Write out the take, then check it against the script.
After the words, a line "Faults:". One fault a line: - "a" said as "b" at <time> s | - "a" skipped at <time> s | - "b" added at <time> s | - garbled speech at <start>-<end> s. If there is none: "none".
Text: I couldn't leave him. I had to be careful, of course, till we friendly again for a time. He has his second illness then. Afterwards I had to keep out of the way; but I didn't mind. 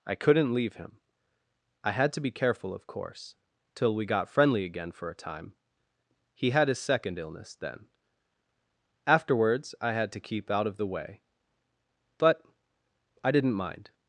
I couldn't leave him. I had to be careful, of course, till we got friendly again for a time. He had his second illness then. Afterwards I had to keep out of the way; but I didn't mind.
Faults:
- "got" added at 4.0 s
- "has" said as "had" at 6.5 s